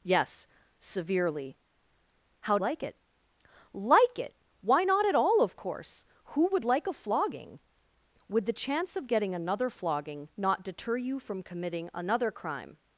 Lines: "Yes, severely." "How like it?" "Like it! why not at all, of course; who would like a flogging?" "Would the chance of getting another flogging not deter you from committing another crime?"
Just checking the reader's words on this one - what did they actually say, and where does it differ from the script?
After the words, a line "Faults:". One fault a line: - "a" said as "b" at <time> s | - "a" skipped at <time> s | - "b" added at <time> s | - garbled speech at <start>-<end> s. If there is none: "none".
"Yes, severely." "How like it?" "Like it! why not at all, of course; who would like a flogging?" "Would the chance of getting another flogging not deter you from committing another crime?"
Faults:
none